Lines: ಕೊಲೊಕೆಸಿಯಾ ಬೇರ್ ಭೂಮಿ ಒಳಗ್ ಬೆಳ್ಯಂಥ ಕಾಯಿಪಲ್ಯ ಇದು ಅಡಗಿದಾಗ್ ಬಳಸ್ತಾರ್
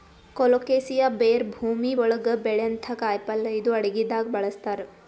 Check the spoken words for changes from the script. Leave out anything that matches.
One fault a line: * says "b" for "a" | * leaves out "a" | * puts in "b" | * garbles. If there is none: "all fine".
all fine